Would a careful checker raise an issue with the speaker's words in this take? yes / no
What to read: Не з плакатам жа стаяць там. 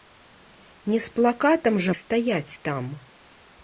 no